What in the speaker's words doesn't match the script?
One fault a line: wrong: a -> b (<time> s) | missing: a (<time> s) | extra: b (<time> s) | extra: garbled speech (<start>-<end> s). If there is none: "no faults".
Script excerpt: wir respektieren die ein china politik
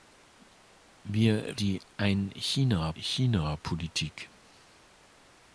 missing: respektieren (1.6 s)
extra: china (3.0 s)